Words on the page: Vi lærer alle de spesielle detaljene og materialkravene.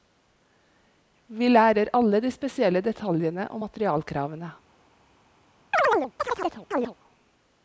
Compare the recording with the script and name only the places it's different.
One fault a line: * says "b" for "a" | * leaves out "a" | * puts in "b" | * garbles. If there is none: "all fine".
all fine